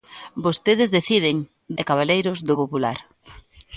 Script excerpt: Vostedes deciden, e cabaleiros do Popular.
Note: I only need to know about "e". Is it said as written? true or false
true